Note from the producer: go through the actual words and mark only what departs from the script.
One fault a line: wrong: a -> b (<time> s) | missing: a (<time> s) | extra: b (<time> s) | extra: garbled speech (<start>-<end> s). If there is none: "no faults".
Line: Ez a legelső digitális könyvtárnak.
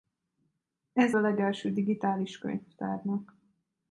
no faults